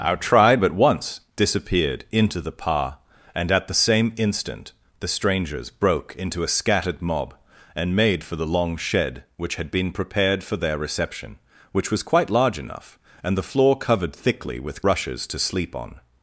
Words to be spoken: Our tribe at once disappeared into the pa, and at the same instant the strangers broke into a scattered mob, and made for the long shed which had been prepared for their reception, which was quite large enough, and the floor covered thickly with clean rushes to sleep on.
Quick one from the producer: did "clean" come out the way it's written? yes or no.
no